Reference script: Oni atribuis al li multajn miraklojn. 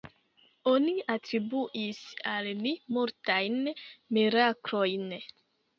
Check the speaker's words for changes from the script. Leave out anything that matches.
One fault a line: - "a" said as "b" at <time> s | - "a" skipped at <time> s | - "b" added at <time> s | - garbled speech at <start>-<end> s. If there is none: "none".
none